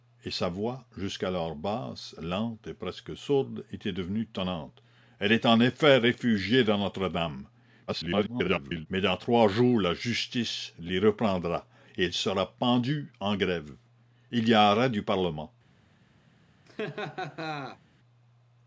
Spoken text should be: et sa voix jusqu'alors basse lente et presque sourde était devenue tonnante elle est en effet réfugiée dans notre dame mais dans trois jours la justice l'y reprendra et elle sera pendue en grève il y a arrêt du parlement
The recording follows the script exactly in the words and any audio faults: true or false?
false